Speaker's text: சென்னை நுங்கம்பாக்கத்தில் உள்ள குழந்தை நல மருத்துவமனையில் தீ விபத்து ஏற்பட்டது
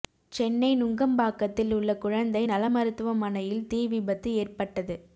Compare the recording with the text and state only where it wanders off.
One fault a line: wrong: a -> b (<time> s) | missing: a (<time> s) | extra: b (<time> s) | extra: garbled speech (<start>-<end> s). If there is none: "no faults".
no faults